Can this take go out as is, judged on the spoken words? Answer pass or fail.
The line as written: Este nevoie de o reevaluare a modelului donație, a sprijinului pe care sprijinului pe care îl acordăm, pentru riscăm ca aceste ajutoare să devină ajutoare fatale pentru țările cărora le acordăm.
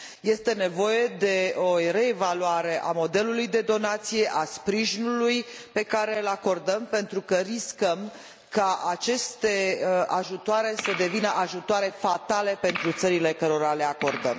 fail